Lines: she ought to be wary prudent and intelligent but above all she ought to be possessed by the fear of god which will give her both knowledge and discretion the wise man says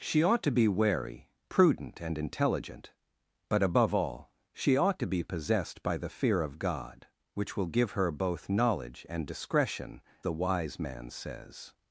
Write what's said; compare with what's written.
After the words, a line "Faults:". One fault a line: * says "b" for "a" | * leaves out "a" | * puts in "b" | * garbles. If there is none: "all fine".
she ought to be wary prudent and intelligent but above all she ought to be possessed by the fear of god which will give her both knowledge and discretion the wise man says
Faults:
all fine